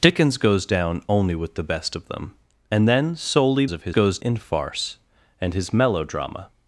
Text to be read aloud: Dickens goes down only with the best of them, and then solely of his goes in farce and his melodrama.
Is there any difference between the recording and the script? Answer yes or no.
no